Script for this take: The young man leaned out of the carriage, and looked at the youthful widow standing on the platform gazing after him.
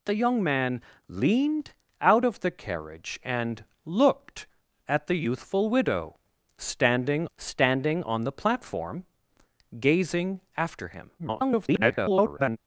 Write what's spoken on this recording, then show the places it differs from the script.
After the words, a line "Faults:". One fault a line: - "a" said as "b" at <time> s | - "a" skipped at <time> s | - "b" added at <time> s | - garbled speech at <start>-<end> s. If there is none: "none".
The young man leaned out of the carriage, and looked at the youthful widow standing standing on the platform gazing after him. [garbled]
Faults:
- "standing" added at 7.4 s
- garbled speech at 11.2-12.6 s